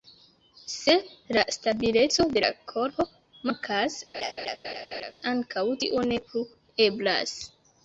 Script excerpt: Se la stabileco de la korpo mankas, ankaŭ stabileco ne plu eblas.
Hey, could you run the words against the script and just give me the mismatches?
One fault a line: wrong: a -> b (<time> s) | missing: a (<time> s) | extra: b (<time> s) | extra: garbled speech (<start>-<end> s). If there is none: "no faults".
wrong: stabileco -> tio (5.8 s)